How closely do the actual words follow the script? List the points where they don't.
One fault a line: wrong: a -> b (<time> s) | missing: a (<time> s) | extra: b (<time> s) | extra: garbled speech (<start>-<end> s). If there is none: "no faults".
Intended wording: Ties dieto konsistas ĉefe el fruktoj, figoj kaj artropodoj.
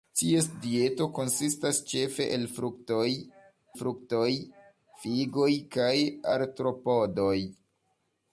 extra: fruktoj (3.8 s)